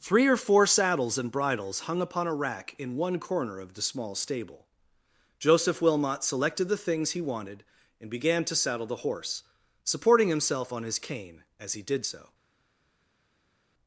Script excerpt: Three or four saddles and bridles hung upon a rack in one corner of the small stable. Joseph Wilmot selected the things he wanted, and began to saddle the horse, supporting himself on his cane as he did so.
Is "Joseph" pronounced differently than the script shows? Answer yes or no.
no